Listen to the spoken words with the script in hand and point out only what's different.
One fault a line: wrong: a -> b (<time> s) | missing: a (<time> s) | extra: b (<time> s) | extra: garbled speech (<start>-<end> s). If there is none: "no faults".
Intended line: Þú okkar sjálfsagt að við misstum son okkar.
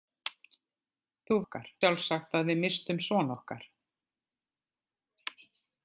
no faults